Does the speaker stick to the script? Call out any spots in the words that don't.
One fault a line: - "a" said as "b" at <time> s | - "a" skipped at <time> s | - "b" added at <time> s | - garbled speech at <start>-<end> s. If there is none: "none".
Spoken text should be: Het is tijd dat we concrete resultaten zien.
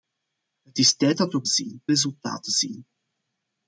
- "concrete" said as "zien" at 1.5 s